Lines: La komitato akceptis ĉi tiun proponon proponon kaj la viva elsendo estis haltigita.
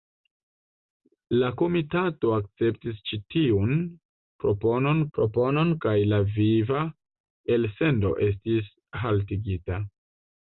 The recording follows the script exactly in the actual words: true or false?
true